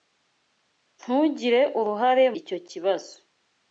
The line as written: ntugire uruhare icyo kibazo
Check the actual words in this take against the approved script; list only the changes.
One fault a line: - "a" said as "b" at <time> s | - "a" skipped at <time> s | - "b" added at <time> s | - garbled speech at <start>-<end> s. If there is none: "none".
none